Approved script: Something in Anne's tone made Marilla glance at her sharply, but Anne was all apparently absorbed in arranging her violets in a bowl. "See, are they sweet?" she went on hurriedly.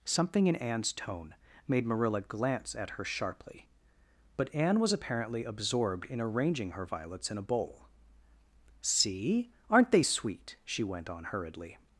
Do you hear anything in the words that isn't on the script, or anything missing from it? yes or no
yes